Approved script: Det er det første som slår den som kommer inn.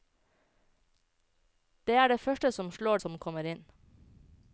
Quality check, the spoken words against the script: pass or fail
fail